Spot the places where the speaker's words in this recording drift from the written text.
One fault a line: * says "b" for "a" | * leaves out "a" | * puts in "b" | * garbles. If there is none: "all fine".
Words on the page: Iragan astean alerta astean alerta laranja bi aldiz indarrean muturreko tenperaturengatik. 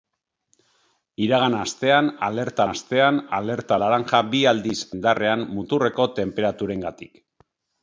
all fine